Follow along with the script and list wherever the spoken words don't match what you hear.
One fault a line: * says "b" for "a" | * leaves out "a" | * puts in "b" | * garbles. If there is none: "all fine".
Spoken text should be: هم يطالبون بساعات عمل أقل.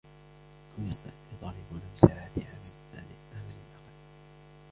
all fine